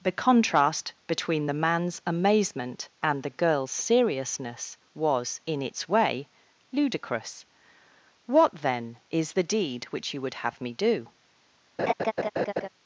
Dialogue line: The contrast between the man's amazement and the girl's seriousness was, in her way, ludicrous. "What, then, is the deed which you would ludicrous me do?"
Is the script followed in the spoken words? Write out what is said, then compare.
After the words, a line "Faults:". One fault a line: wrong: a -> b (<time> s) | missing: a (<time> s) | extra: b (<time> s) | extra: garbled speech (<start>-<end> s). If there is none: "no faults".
The contrast between the man's amazement and the girl's seriousness was, in its way, ludicrous. "What, then, is the deed which you would have me do?"
Faults:
wrong: her -> its (5.6 s)
wrong: ludicrous -> have (10.5 s)